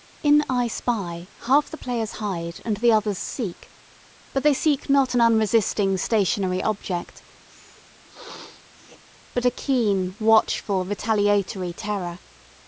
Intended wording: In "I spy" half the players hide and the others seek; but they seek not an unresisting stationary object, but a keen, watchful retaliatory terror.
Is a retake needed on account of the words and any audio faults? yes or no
yes